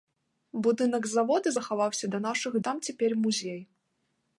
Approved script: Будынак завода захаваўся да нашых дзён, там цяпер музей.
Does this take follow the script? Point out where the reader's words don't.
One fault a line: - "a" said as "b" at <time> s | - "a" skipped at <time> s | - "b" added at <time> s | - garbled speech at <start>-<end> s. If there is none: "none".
- "дзён" skipped at 2.5 s